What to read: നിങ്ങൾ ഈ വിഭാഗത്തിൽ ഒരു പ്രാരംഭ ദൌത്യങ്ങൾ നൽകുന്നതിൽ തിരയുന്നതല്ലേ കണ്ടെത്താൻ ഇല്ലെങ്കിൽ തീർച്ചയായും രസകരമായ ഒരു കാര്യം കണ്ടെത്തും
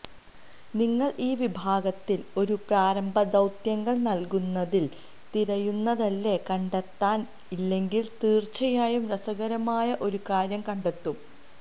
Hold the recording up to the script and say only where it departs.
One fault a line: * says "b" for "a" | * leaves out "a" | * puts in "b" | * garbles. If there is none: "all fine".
all fine